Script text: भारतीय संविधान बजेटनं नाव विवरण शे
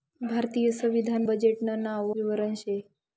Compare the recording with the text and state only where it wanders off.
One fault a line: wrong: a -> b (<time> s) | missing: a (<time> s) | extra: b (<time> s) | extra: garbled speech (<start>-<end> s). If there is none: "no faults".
no faults